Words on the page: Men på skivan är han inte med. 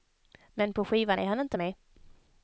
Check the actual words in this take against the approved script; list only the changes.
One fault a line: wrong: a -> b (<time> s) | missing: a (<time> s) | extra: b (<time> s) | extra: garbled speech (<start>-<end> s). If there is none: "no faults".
no faults